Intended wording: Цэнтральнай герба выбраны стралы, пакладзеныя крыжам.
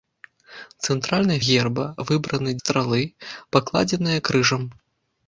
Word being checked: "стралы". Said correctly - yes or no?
yes